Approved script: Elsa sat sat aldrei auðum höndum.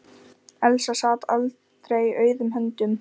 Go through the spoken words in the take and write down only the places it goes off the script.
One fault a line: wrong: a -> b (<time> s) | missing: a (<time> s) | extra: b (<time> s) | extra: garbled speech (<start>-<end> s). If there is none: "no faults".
missing: sat (1.3 s)